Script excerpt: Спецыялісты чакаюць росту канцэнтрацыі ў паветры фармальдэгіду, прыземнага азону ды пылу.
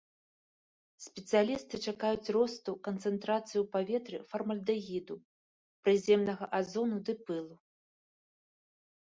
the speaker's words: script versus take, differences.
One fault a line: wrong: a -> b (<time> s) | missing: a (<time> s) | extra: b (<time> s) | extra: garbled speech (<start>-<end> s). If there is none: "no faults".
no faults